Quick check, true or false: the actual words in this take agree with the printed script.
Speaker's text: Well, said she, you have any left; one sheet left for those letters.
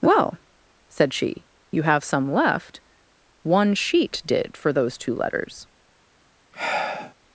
false